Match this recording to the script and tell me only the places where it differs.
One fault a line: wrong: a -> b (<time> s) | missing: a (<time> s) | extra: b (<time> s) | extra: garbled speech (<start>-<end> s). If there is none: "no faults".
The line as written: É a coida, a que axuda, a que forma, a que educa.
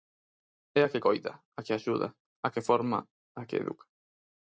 extra: que (0.9 s)